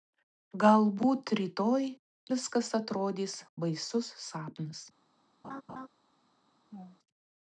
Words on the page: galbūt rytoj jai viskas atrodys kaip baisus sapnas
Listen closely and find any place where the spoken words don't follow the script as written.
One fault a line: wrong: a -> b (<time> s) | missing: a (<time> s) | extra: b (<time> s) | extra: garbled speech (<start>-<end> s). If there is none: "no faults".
missing: jai (1.9 s)
missing: kaip (3.4 s)